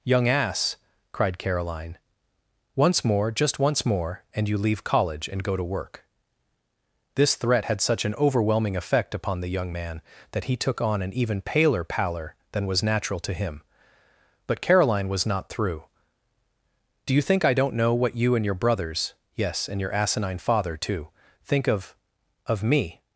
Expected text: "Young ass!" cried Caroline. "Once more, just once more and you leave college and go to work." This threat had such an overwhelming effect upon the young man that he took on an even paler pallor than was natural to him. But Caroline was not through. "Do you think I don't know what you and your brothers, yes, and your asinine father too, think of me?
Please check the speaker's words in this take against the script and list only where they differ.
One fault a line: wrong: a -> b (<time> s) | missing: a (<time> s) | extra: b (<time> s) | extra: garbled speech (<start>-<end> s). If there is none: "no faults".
extra: of (22.4 s)